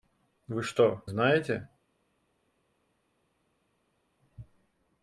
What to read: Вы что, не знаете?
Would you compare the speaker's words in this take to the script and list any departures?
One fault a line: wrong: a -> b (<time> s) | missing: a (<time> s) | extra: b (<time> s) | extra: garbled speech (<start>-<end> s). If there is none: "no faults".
missing: не (1.0 s)